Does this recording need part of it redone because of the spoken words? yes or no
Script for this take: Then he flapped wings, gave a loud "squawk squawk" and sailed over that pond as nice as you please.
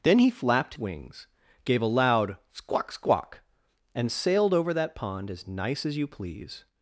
no